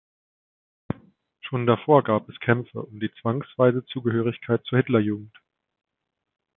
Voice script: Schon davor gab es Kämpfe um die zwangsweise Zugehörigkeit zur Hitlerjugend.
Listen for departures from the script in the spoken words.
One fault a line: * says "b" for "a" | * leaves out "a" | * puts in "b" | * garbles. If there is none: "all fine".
all fine